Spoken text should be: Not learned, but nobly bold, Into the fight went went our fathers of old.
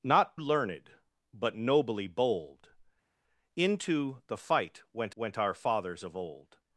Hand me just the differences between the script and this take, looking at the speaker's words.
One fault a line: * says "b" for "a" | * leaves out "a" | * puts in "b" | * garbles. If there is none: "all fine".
all fine